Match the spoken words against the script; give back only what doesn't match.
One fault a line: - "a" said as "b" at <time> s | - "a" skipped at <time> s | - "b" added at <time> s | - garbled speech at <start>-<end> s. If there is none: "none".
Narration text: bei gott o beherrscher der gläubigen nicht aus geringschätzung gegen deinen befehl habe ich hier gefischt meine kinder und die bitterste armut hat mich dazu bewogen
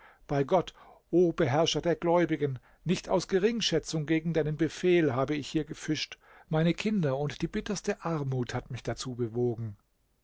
none